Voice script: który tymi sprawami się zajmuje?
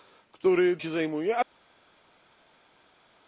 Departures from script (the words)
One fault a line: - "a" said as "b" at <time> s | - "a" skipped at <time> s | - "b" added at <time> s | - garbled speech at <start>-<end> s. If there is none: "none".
- "tymi sprawami" skipped at 0.8 s